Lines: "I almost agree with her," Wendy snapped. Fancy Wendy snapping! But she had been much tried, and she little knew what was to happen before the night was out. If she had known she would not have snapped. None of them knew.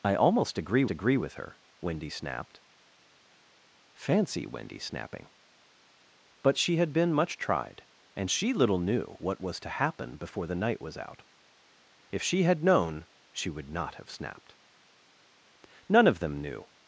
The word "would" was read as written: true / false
true